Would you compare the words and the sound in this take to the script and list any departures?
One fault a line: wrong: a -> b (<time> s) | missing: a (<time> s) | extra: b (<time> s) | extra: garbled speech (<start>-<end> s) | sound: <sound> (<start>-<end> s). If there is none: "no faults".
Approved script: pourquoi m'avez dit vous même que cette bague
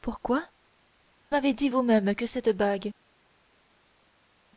no faults